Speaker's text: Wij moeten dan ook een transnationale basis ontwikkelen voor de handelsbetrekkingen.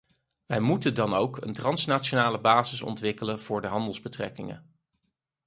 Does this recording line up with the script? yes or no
yes